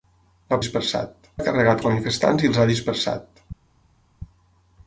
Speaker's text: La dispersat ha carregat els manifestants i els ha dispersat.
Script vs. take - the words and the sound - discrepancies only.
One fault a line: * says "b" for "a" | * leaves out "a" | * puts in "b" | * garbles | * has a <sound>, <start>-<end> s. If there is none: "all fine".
all fine